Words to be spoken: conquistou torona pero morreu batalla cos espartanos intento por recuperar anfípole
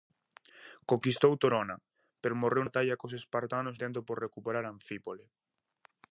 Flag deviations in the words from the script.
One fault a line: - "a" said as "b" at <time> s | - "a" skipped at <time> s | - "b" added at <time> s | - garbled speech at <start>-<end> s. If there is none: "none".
none